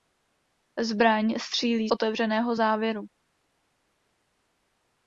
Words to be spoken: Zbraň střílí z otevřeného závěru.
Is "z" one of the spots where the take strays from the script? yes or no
yes